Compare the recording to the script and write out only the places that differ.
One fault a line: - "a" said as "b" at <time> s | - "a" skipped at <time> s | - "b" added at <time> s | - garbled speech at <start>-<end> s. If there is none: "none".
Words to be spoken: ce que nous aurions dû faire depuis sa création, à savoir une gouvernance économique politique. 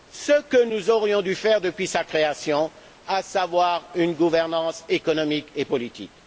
- "et" added at 5.5 s